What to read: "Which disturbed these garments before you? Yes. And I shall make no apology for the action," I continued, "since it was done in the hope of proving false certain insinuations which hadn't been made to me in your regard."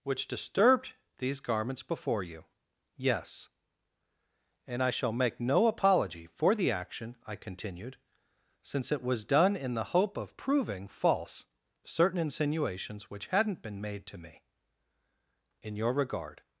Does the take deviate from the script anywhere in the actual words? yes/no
no